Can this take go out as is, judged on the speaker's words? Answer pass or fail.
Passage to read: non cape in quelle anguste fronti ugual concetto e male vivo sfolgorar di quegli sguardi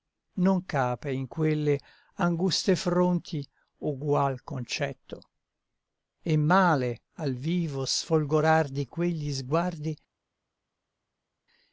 fail